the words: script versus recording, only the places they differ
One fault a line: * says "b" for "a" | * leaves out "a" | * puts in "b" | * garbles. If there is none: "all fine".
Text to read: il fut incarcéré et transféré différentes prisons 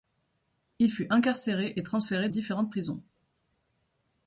all fine